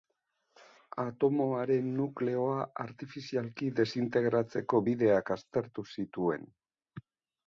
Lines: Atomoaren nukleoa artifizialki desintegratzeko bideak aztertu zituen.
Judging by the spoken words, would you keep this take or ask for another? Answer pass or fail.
pass